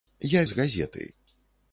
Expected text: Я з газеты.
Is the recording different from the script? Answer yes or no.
no